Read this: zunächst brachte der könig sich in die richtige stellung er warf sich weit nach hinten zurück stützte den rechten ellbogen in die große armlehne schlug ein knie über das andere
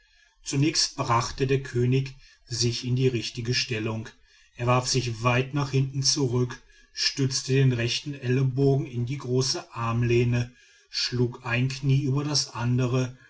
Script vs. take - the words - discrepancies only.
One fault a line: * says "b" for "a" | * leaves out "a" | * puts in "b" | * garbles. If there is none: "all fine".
all fine